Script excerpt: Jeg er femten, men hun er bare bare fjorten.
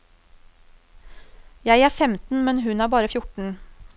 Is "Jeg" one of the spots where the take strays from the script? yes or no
no